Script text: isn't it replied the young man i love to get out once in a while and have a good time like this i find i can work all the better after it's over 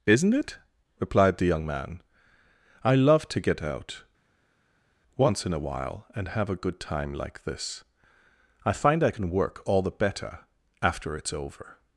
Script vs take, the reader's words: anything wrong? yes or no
no